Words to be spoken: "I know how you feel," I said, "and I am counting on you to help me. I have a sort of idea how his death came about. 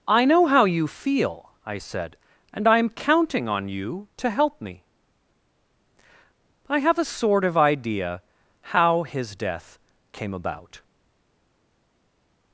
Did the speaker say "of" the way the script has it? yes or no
yes